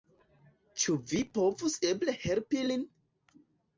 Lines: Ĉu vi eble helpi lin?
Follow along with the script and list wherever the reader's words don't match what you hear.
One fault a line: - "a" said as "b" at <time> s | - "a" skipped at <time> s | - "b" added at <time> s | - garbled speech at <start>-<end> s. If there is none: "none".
- "povus" added at 1.4 s